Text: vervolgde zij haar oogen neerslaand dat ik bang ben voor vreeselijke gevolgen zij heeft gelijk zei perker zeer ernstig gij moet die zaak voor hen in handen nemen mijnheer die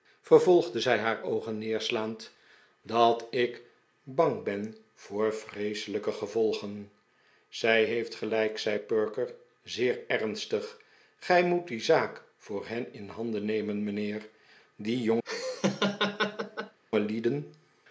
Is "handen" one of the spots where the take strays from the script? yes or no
no